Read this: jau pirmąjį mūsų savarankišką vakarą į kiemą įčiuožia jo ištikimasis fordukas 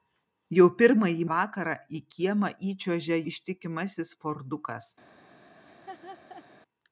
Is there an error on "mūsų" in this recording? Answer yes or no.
yes